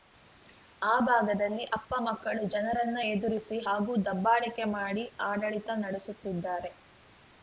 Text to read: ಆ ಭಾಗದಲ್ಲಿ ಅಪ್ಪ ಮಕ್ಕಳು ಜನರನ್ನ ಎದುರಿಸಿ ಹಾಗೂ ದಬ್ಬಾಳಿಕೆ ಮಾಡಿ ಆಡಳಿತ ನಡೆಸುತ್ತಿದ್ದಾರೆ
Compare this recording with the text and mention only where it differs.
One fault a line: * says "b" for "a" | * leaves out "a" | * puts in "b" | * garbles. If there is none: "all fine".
all fine